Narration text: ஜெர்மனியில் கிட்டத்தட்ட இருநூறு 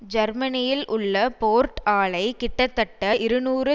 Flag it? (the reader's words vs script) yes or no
yes